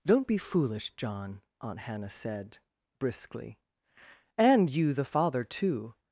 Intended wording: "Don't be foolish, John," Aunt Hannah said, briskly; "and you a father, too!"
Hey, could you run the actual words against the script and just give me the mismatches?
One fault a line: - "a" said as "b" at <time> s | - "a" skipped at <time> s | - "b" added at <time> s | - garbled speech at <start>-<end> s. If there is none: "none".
- "a" said as "the" at 4.9 s